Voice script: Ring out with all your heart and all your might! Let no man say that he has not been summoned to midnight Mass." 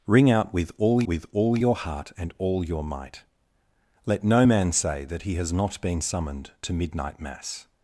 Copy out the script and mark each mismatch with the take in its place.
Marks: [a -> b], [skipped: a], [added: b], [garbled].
Ring out with all [added: with all] your heart and all your might! Let no man say that he has not been summoned to midnight Mass."